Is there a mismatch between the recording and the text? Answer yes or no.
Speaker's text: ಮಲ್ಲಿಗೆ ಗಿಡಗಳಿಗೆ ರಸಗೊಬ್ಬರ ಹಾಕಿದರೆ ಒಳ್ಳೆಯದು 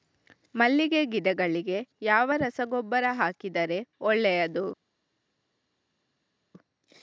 yes